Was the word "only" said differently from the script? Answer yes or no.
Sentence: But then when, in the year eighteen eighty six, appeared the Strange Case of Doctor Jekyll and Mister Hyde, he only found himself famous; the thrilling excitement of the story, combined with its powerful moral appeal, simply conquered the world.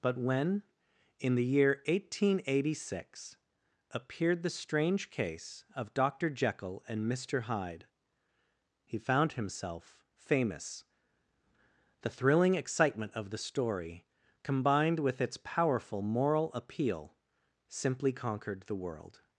yes